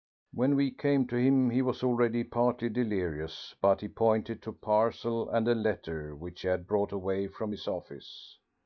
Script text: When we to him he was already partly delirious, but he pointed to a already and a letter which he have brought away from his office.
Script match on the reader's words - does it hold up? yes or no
no